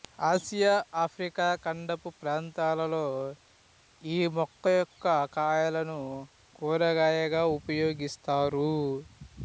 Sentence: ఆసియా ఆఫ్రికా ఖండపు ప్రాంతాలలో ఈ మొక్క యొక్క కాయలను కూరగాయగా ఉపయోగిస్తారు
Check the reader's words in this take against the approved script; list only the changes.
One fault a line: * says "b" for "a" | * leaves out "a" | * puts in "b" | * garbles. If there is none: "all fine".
all fine